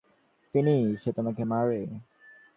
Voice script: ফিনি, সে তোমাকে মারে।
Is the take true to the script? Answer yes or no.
yes